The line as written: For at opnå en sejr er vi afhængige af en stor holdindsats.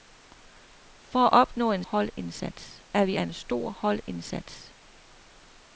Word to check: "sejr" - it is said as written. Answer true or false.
false